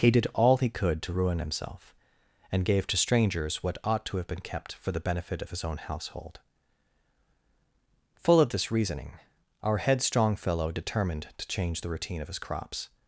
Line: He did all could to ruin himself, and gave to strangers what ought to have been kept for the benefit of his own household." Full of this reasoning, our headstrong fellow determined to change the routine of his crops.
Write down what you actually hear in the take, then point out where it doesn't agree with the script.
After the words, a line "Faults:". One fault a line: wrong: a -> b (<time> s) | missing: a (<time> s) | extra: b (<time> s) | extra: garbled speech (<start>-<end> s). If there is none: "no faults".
He did all he could to ruin himself, and gave to strangers what ought to have been kept for the benefit of his own household." Full of this reasoning, our headstrong fellow determined to change the routine of his crops.
Faults:
extra: he (0.6 s)